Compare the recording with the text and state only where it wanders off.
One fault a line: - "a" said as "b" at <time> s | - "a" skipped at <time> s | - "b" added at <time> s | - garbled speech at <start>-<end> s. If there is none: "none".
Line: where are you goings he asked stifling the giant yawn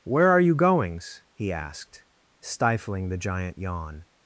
none